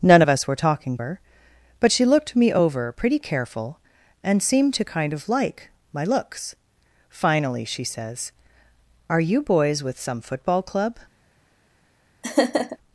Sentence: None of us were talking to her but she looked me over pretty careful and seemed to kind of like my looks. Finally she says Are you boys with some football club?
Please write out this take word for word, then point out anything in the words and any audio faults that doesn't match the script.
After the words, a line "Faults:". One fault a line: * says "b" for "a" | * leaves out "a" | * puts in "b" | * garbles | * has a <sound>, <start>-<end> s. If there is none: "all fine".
None of us were talking her but she looked me over pretty careful and seemed to kind of like my looks. Finally she says Are you boys with some football club?
Faults:
* leaves out "to"
* has a laugh, 12.2-12.8 s